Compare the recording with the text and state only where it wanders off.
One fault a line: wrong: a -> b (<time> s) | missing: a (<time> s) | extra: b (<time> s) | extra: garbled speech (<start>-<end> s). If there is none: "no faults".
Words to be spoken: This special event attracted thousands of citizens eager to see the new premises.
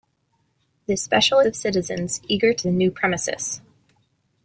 missing: event attracted thousands (1.4 s)
missing: see (2.7 s)